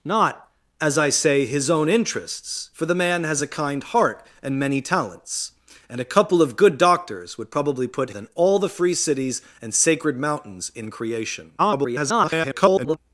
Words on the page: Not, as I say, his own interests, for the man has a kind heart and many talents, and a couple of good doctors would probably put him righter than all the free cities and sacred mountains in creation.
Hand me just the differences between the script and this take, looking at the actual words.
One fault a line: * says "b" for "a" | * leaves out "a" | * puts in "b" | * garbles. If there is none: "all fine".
* leaves out "him righter"
* garbles